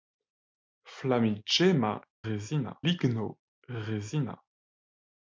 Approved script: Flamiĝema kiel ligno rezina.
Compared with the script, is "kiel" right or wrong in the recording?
wrong